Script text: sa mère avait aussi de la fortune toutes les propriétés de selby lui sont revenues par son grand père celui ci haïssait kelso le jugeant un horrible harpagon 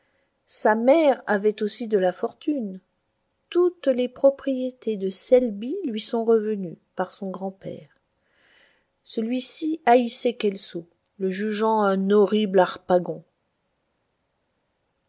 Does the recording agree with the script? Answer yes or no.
yes